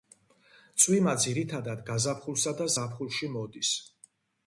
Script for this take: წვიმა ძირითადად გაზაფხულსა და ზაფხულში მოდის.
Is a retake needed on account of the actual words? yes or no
no